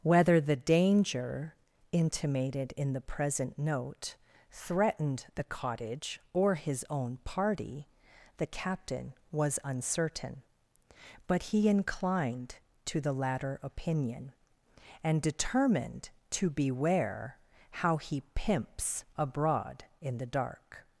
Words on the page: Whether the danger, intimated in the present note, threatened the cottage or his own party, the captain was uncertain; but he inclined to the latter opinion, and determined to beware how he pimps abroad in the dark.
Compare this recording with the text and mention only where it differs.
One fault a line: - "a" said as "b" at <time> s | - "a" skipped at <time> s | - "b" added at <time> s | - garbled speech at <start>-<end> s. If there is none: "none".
none